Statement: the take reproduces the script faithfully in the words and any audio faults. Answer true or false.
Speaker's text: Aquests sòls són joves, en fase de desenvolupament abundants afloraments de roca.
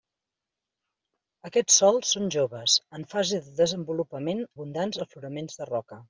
true